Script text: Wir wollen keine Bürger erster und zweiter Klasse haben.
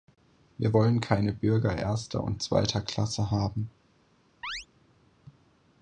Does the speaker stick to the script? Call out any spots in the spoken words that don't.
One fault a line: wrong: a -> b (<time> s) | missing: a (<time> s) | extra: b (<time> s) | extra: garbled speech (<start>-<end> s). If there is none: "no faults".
no faults